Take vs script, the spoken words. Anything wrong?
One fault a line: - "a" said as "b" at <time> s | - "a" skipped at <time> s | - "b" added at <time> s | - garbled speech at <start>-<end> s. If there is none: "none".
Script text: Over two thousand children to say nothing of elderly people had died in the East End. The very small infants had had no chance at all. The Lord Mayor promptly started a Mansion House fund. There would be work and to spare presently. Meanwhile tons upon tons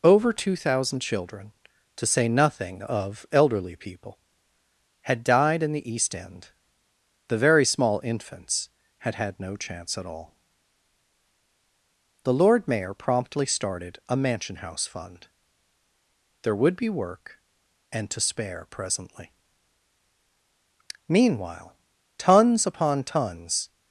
none